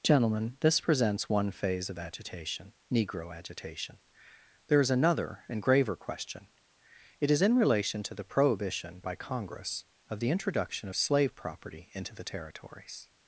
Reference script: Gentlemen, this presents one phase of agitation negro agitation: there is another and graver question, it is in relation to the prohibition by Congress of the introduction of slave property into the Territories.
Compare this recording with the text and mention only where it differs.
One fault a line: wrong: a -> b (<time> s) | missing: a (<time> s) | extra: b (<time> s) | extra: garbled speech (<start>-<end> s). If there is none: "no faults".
no faults